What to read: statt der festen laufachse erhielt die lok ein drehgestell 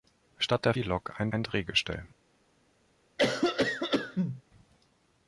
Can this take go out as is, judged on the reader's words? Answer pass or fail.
fail